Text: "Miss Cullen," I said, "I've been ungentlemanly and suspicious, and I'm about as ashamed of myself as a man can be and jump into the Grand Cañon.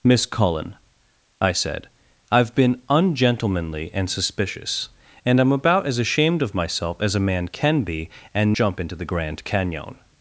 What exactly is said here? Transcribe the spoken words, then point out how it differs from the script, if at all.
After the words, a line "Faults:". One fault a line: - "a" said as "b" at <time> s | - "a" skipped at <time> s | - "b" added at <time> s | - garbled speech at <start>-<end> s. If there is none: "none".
"Miss Cullen," I said, "I've been ungentlemanly and suspicious, and I'm about as ashamed of myself as a man can be and jump into the Grand Cañon.
Faults:
none